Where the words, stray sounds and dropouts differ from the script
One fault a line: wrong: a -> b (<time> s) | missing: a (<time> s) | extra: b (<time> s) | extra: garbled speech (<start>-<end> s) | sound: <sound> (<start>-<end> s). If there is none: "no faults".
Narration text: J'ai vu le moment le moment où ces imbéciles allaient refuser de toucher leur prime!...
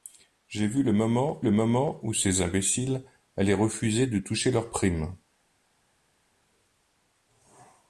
no faults